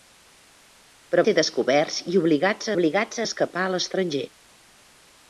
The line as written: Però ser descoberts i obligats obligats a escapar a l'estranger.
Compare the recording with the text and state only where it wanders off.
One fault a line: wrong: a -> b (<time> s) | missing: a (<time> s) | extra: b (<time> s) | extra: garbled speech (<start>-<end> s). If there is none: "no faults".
no faults